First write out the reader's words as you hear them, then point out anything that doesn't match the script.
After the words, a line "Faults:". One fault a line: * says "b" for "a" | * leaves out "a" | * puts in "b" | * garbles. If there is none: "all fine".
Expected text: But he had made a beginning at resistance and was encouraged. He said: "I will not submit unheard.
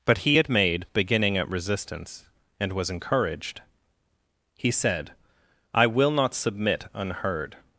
But he had made beginning at resistance and was encouraged. He said: "I will not submit unheard.
Faults:
* leaves out "a"